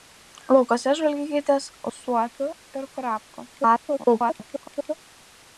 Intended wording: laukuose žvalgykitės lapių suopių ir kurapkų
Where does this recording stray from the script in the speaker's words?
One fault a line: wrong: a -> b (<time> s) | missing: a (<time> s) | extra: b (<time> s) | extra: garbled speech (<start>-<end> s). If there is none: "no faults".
missing: lapių (1.7 s)
extra: garbled speech (3.5-4.9 s)